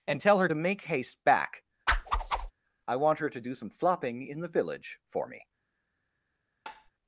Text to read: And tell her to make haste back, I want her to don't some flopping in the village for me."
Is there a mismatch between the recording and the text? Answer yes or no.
yes